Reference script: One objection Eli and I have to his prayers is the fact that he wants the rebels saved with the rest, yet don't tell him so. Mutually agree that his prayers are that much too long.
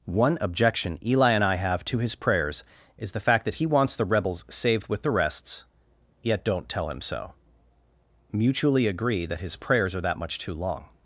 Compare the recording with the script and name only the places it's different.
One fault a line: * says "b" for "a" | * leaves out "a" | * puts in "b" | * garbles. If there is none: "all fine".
* says "rests" for "rest"